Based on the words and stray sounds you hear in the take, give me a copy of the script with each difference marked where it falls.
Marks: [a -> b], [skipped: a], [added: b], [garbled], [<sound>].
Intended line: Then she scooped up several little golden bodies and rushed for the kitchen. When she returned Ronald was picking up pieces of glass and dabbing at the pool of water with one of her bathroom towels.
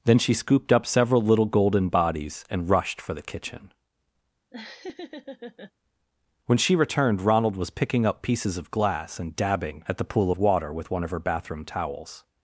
Then she scooped up several little golden bodies and rushed for the kitchen. [laugh] When she returned Ronald was picking up pieces of glass and dabbing at the pool of water with one of her bathroom towels.